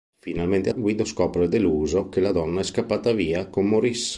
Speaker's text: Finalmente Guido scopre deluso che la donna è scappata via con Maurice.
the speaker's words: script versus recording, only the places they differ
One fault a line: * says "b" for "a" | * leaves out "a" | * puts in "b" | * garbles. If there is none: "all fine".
all fine